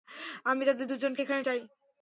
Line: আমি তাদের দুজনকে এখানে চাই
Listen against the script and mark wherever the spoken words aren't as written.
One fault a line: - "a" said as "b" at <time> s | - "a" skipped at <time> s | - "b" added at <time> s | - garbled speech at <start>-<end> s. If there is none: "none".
none